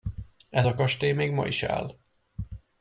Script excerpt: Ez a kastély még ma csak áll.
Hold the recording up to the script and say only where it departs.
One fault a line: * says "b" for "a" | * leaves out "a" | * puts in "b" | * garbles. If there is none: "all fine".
* says "is" for "csak"